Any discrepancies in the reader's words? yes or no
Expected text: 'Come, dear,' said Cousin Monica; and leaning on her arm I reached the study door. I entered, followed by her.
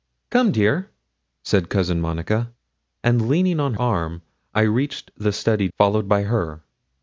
yes